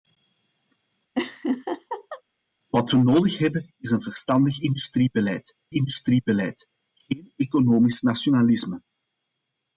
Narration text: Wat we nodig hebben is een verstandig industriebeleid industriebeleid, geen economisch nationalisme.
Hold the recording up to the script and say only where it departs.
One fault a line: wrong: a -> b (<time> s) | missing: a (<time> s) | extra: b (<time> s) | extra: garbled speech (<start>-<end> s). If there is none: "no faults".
no faults